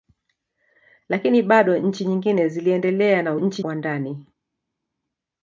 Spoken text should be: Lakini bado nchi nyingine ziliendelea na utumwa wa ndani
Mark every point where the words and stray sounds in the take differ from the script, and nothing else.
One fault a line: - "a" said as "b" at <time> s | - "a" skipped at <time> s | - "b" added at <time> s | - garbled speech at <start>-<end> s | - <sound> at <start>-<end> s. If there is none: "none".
- "utumwa" said as "nchi" at 3.4 s